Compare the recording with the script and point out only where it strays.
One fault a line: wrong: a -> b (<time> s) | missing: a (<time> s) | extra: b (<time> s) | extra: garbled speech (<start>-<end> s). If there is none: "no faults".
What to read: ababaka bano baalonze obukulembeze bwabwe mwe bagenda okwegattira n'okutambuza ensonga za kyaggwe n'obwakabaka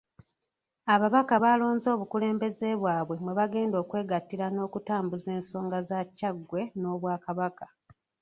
missing: bano (1.3 s)